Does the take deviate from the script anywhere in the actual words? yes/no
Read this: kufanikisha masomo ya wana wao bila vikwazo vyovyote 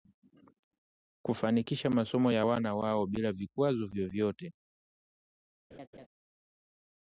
no